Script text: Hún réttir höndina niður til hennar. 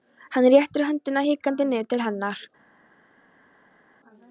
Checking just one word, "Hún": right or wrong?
wrong